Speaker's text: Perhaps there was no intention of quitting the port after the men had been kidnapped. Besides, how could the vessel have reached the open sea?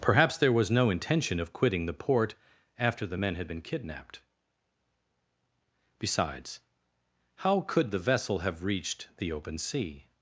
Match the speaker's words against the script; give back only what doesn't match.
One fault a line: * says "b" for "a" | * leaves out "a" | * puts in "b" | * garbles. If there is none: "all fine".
all fine